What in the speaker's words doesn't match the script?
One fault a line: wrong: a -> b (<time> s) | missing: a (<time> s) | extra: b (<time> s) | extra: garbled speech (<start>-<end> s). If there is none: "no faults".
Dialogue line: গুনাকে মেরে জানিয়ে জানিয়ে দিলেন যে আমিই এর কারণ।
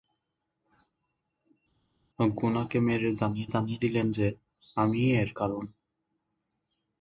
no faults